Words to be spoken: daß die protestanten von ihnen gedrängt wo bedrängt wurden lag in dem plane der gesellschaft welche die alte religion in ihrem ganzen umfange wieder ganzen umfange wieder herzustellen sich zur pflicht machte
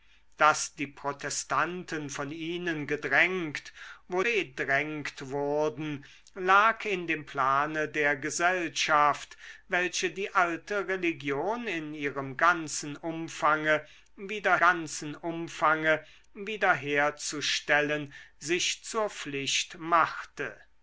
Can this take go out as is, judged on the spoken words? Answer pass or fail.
pass